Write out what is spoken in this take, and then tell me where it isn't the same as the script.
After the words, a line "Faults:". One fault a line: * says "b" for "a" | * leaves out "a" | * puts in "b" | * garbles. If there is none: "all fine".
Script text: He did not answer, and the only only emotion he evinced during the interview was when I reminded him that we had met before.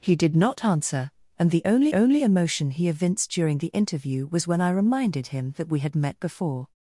He did not answer, and the only only emotion he evinced during the interview was when I reminded him that we had met before.
Faults:
all fine